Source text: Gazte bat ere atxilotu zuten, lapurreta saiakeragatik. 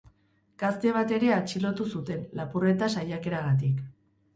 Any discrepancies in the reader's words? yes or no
no